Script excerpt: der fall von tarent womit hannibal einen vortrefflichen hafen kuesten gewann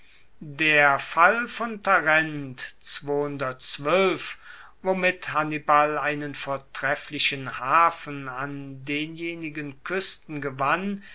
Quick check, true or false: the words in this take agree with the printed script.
false